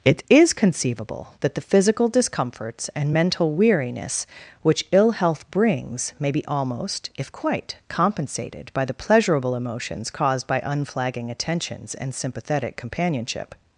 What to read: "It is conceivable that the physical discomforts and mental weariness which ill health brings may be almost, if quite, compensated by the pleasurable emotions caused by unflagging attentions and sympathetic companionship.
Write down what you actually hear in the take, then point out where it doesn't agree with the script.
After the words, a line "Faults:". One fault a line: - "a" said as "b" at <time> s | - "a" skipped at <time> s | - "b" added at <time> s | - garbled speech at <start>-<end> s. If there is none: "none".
"It is conceivable that the physical discomforts and mental weariness which ill health brings may be almost, if quite, compensated by the pleasurable emotions caused by unflagging attentions and sympathetic companionship.
Faults:
none